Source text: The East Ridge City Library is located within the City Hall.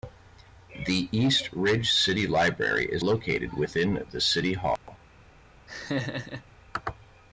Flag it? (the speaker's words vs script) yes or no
no